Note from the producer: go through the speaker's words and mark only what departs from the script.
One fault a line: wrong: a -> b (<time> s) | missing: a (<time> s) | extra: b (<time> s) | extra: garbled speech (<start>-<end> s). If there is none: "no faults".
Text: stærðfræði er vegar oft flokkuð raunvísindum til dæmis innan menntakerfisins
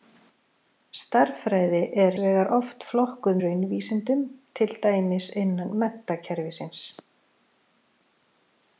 no faults